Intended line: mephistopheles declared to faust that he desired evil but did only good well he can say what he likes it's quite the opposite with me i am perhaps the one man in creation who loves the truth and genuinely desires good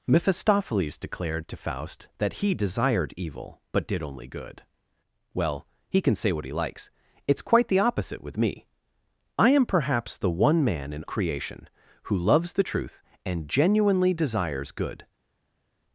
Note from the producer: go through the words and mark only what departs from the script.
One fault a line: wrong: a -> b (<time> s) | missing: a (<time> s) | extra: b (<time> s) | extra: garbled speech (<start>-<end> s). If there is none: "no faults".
no faults